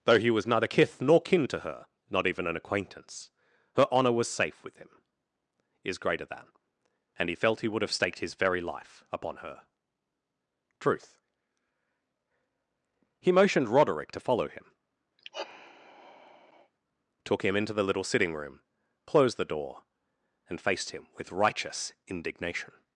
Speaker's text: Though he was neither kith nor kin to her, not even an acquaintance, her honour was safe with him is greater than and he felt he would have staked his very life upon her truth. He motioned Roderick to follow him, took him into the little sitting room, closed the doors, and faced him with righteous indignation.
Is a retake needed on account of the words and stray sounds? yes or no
yes